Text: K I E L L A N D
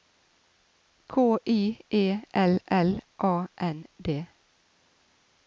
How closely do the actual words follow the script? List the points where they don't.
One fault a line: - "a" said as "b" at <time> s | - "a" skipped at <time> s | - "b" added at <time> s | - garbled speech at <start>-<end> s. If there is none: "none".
none